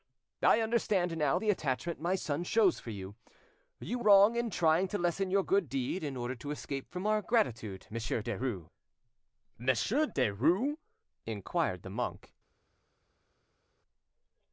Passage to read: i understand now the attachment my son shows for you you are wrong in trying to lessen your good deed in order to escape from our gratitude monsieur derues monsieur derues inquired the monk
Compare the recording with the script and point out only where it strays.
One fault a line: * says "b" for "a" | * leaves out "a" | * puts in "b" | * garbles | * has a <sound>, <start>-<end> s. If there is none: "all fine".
* leaves out "are"